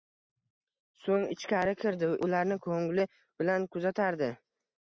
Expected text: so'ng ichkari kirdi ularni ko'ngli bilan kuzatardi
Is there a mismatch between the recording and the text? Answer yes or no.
no